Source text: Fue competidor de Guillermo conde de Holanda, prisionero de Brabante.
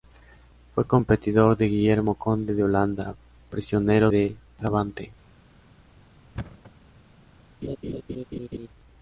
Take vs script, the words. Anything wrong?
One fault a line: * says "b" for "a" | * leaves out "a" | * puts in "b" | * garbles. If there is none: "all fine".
all fine